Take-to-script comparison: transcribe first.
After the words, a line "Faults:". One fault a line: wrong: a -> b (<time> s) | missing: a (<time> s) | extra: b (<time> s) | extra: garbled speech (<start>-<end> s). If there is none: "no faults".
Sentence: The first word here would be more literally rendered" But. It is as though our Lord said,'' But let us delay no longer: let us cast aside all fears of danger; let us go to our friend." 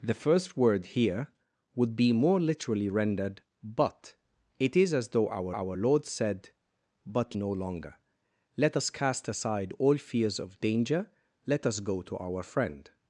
The first word here would be more literally rendered" But. It is as though our our Lord said,'' But no longer: let us cast aside all fears of danger; let us go to our friend."
Faults:
extra: our (5.5 s)
missing: let us delay (7.4 s)